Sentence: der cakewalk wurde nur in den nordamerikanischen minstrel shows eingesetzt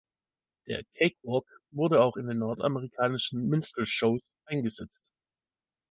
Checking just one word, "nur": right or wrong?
wrong